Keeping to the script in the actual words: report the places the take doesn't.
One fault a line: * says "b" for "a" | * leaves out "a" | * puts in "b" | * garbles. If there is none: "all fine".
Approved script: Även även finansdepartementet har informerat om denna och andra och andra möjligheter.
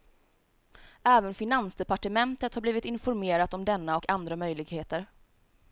* leaves out "även"
* puts in "blivit"
* leaves out "och andra"